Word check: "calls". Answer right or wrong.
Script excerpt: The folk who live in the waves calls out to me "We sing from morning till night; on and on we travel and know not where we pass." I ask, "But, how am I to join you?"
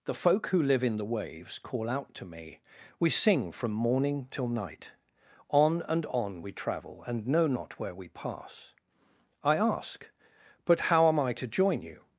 wrong